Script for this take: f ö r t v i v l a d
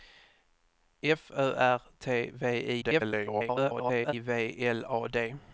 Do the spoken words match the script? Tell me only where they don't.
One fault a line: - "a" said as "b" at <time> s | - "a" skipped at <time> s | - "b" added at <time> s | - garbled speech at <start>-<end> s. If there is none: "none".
- garbled speech at 2.8-4.1 s